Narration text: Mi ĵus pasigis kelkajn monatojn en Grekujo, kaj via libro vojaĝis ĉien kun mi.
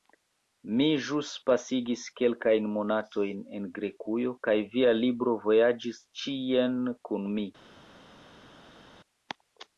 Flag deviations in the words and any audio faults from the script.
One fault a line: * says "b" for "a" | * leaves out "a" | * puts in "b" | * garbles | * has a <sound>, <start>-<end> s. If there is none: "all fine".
all fine